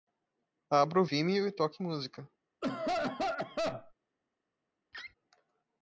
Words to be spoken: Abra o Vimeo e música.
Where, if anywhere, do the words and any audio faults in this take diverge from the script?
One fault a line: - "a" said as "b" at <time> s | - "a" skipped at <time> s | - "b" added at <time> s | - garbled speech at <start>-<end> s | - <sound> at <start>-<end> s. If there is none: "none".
- "toque" added at 1.5 s
- cough at 2.6-3.9 s
- laugh at 4.9-5.1 s